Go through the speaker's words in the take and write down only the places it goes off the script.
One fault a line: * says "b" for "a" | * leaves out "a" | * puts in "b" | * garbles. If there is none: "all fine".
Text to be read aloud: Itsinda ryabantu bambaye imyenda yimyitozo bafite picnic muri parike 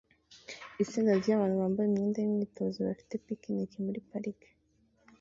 all fine